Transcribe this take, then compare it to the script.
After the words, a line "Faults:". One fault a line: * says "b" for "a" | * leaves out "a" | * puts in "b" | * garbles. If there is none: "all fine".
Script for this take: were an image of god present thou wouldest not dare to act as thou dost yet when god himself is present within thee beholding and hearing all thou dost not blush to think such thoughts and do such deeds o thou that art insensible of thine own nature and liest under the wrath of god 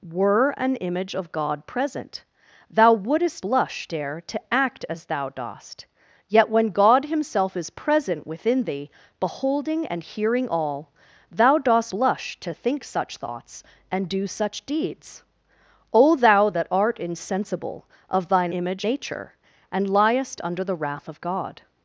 were an image of god present thou wouldest blush dare to act as thou dost yet when god himself is present within thee beholding and hearing all thou dost blush to think such thoughts and do such deeds o thou that art insensible of thine image nature and liest under the wrath of god
Faults:
* says "blush" for "not"
* leaves out "not"
* says "image" for "own"